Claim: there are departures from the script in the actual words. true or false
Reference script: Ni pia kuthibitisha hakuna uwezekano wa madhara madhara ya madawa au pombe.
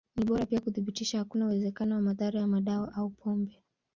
true